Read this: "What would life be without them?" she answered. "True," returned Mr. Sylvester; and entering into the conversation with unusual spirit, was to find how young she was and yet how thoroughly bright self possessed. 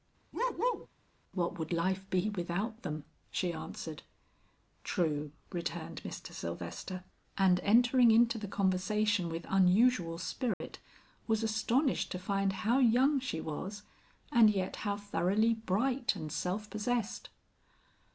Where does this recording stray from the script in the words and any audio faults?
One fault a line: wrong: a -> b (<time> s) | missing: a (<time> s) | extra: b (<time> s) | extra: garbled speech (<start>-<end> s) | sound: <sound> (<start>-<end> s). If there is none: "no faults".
sound: bark (0.3-0.9 s)
sound: dropout (10.5-10.6 s)
extra: astonished (11.4 s)
extra: and (16.1 s)